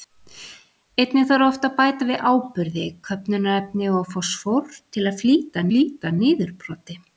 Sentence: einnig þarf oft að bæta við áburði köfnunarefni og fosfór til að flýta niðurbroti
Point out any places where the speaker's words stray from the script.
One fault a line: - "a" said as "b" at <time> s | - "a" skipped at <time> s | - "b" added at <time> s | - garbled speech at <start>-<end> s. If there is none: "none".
- "flýta" added at 5.7 s